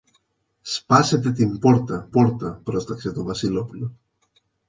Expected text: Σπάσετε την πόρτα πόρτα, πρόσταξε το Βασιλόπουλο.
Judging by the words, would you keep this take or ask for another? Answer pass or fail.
pass